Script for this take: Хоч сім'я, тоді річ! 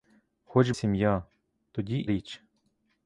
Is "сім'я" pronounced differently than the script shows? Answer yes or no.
no